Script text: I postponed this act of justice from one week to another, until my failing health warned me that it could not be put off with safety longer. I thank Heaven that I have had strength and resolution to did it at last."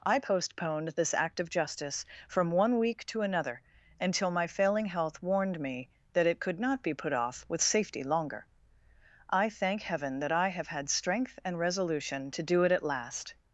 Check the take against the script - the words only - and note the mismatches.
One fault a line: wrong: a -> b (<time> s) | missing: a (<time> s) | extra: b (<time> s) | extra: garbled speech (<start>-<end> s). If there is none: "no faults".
wrong: did -> do (12.4 s)